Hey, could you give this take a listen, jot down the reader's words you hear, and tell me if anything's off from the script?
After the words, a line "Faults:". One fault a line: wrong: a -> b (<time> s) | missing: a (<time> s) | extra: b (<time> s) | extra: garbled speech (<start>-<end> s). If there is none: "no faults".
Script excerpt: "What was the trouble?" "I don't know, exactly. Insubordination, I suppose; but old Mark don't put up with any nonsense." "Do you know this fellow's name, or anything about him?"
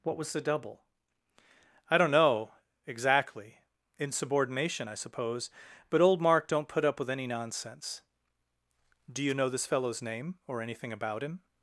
"What was the double?" "I don't know, exactly. Insubordination, I suppose; but old Mark don't put up with any nonsense." "Do you know this fellow's name, or anything about him?"
Faults:
wrong: trouble -> double (0.4 s)